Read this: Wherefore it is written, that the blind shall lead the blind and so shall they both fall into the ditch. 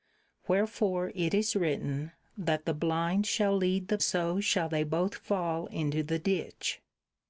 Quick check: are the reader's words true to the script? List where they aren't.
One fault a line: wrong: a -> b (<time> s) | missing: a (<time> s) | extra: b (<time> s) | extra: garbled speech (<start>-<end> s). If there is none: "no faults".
missing: blind and (4.0 s)